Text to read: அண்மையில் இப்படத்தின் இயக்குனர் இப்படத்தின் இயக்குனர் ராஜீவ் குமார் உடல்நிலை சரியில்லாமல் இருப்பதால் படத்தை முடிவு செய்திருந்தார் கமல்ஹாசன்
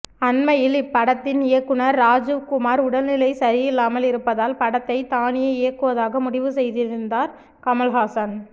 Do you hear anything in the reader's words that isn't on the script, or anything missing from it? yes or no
yes